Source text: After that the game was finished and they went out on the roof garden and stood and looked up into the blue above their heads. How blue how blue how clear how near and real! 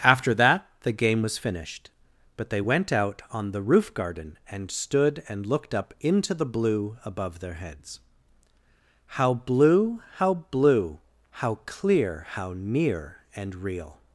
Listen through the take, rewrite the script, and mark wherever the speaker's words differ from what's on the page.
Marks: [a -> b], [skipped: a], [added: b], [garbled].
After that the game was finished [and -> but] they went out on the roof garden and stood and looked up into the blue above their heads. How blue how blue how clear how near and real!